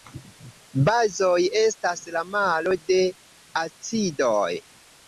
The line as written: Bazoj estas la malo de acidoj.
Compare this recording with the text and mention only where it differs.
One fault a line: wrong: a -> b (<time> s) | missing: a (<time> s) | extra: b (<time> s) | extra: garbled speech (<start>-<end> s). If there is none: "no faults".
no faults